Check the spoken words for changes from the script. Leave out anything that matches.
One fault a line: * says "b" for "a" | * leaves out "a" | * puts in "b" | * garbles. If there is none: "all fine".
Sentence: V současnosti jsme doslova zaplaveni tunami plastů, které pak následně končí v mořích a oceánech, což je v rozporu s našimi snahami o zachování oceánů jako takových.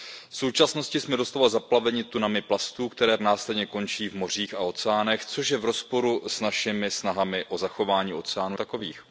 * leaves out "pak"
* leaves out "jako"